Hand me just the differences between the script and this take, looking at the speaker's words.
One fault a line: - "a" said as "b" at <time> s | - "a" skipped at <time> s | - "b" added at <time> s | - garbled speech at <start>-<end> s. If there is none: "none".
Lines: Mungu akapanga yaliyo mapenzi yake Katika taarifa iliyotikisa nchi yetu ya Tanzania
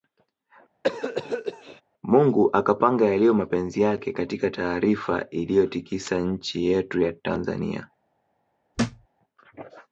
none